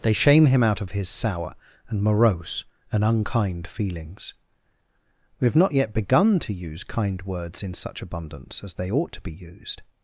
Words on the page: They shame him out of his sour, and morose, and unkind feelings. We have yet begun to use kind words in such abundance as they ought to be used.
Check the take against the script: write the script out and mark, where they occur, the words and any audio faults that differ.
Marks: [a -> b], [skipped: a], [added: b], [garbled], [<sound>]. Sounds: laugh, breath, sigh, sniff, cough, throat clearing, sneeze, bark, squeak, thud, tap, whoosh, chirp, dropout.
They shame him out of his sour, and morose, and unkind feelings. We have [added: not] yet begun to use kind words in such abundance as they ought to be used.